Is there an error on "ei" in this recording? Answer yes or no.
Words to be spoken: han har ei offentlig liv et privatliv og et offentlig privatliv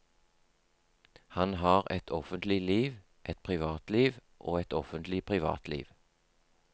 yes